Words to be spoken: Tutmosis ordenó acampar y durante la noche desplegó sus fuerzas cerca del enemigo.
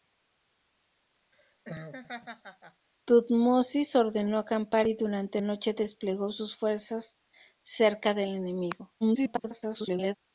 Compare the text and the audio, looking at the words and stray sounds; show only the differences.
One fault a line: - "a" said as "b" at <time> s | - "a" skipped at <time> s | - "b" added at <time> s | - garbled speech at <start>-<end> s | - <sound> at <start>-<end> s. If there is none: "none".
- laugh at 1.3-2.9 s
- "la" skipped at 5.4 s
- garbled speech at 9.0-10.2 s